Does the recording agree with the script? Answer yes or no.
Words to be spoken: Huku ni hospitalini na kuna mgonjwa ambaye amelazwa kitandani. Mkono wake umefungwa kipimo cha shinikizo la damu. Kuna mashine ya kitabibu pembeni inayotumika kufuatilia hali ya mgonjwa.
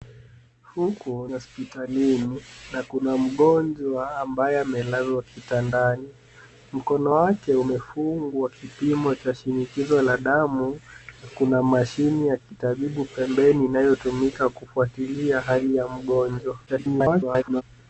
no